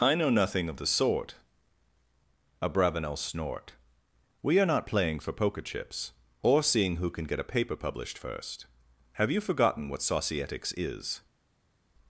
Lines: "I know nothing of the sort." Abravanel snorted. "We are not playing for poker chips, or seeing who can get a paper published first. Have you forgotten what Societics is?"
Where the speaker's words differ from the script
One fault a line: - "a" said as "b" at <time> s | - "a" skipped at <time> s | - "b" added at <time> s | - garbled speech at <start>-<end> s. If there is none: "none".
- "snorted" said as "snort" at 3.2 s